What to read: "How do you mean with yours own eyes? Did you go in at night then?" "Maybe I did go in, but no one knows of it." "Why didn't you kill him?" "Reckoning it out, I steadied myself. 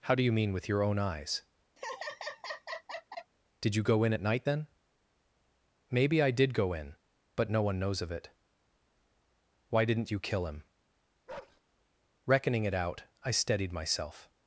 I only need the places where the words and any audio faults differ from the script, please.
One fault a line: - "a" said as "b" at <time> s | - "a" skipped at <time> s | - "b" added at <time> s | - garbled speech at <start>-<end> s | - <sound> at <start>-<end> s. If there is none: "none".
- "yours" said as "your" at 0.7 s
- laugh at 1.8-3.3 s
- bark at 11.3-11.6 s